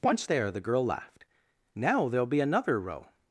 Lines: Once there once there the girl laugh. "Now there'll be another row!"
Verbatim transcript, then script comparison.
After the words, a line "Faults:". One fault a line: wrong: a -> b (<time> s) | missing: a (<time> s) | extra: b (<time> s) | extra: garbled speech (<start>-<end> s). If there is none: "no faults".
Once there the girl laughed. "Now there'll be another row!"
Faults:
missing: once there (0.5 s)
wrong: laugh -> laughed (0.8 s)